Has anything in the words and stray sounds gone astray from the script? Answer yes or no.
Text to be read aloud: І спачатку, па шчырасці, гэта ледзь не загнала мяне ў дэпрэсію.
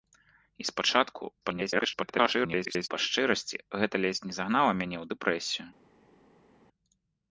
yes